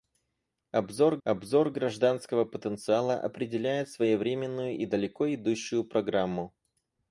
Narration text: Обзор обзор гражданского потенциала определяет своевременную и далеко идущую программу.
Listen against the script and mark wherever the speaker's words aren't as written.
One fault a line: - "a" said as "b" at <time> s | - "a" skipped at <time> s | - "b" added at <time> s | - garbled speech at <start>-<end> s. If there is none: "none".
none